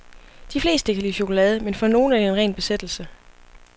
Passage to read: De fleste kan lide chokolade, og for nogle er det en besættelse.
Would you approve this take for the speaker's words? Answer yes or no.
no